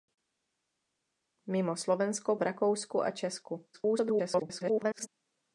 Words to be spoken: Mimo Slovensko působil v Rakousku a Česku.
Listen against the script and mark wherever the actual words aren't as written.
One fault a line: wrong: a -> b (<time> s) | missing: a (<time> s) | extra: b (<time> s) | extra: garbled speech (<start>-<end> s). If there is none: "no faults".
missing: působil (2.4 s)
extra: garbled speech (3.7-5.1 s)